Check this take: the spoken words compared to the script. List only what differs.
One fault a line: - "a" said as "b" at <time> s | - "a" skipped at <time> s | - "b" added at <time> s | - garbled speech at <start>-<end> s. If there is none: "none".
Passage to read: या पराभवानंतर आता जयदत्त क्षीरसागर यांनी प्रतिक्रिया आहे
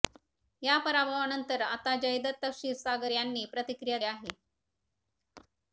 none